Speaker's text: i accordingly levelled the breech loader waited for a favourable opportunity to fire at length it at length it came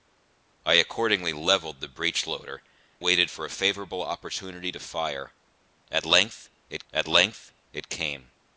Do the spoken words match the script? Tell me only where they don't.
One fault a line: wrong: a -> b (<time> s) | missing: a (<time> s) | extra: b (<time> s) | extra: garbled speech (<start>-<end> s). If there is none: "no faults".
no faults